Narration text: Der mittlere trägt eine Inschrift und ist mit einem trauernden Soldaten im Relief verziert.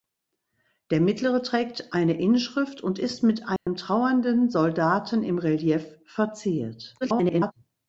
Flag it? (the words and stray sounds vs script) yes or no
yes